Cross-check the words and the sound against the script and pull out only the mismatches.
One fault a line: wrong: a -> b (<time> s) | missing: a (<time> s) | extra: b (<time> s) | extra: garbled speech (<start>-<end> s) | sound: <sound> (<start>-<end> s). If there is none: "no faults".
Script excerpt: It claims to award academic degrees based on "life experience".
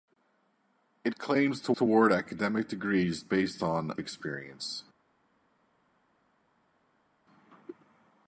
extra: to (1.7 s)
missing: life (4.0 s)